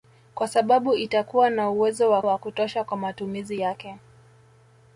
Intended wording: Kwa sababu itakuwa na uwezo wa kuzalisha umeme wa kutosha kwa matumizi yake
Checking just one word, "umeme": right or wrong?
wrong